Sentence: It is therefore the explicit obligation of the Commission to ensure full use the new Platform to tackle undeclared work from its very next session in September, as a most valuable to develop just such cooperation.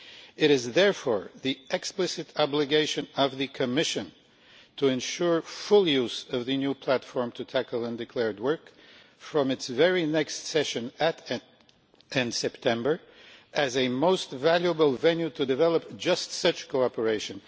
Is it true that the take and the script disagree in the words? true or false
true